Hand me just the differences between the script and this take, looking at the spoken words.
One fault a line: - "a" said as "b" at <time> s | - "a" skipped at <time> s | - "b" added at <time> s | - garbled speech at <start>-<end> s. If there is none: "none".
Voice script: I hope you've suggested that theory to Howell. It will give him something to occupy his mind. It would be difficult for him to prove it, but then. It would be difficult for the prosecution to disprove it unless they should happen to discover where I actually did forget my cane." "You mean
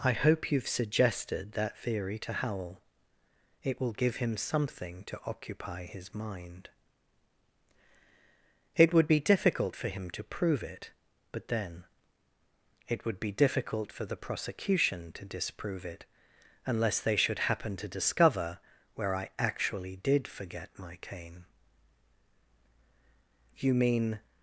none